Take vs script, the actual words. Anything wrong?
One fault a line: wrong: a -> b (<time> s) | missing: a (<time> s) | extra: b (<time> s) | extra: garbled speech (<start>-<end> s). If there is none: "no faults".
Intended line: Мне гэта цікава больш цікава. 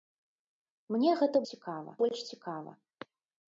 no faults